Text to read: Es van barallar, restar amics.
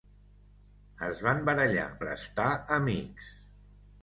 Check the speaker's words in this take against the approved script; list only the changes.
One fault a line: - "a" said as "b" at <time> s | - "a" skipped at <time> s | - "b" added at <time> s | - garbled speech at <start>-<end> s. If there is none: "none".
none